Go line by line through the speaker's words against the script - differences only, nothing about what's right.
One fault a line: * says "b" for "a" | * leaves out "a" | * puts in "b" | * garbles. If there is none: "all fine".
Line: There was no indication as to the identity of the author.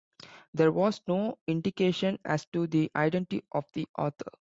all fine